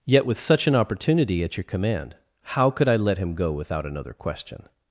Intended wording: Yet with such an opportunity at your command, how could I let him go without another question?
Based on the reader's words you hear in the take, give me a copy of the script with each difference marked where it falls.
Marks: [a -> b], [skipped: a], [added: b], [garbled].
Yet with such an opportunity at your command, how could I let him go without another question?